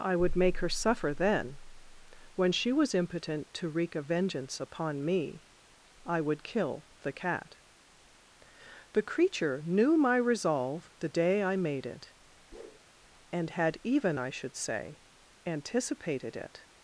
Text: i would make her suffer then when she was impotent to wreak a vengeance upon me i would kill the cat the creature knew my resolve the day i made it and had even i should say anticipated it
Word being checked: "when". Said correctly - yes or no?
yes